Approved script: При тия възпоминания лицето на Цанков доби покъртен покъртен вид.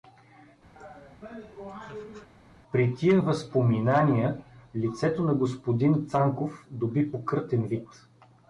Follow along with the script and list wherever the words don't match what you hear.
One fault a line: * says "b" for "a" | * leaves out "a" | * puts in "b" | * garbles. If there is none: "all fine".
* puts in "господин"
* leaves out "покъртен"